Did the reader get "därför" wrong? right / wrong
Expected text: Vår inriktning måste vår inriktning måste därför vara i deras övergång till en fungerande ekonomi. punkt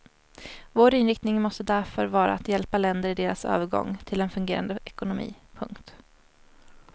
wrong